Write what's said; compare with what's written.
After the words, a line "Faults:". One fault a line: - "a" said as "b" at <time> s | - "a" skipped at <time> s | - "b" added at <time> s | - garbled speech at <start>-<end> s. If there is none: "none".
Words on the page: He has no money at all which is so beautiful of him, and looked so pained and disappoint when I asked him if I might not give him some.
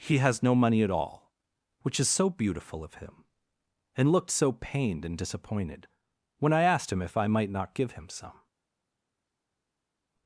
He has no money at all which is so beautiful of him, and looked so pained and disappointed when I asked him if I might not give him some.
Faults:
- "disappoint" said as "disappointed" at 5.2 s